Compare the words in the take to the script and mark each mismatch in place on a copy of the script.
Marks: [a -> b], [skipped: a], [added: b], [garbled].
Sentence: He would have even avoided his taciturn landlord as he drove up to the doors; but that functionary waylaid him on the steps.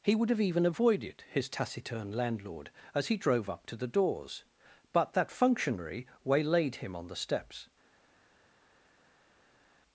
He would have even avoided his taciturn landlord as he drove up to the doors; but that functionary waylaid him on the steps.